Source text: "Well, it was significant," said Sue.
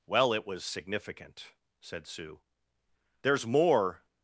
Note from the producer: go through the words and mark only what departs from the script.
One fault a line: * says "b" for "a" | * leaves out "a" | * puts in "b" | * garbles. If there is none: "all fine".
* puts in "There's more"